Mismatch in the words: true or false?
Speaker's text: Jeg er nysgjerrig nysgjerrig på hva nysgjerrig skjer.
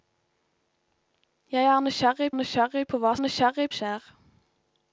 false